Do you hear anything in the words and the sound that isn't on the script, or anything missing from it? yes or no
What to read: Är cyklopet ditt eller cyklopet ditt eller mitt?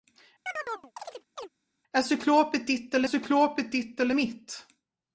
yes